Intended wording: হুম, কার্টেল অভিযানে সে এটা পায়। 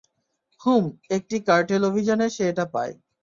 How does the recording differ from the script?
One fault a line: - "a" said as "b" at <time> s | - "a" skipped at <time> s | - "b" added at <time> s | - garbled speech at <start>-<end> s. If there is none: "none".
- "একটি" added at 1.1 s